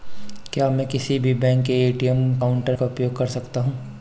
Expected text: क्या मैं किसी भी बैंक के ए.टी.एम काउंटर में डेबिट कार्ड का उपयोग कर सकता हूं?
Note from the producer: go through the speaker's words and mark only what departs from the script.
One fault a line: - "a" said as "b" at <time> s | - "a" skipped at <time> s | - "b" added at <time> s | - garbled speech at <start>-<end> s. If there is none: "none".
- "में डेबिट कार्ड" skipped at 2.8 s